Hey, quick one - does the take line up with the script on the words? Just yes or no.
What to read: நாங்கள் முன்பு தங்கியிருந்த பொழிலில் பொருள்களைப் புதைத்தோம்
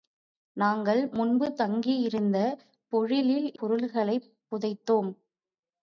yes